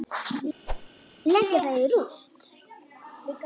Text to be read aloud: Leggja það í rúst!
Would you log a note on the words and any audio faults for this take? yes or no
yes